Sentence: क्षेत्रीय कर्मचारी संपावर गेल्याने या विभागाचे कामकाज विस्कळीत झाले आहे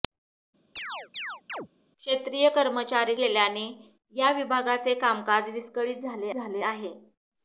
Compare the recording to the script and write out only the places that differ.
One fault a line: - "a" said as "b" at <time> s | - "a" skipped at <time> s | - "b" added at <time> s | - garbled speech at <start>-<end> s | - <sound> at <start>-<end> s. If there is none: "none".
- chirp at 0.8-1.7 s
- "संपावर" skipped at 3.2 s
- "झाले" added at 6.3 s